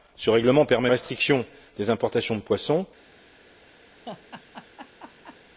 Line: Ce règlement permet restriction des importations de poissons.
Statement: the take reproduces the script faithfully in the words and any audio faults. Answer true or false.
false